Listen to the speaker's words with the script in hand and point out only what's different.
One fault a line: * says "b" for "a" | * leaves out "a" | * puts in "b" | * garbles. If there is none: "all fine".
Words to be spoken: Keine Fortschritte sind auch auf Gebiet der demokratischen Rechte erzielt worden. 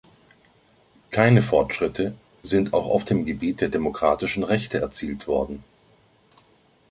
* puts in "dem"